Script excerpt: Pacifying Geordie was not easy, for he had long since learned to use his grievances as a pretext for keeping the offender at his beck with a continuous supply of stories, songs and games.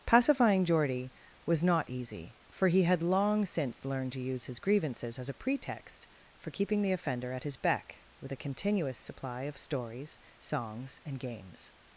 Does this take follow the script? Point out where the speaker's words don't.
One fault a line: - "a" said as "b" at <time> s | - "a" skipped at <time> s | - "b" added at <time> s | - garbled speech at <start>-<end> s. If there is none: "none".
none